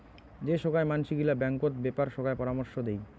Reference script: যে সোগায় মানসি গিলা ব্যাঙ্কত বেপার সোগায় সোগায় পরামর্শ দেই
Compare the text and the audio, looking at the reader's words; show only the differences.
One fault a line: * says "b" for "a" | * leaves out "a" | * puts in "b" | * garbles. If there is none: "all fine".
* leaves out "সোগায়"